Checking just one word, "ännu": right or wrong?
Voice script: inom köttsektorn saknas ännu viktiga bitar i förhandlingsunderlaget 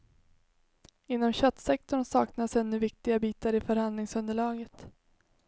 right